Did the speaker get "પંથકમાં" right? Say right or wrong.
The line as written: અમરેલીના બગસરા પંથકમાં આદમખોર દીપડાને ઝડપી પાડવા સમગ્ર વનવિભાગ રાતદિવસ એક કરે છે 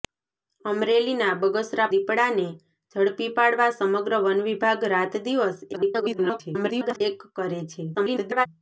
wrong